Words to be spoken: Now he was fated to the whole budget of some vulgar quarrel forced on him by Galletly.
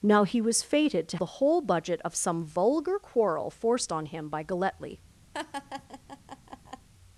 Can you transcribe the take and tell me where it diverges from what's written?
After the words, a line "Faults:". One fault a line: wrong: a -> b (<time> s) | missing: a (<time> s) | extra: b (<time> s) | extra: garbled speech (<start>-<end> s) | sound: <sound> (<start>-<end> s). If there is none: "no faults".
Now he was fated to the whole budget of some vulgar quarrel forced on him by Galletly.
Faults:
sound: laugh (5.3-6.9 s)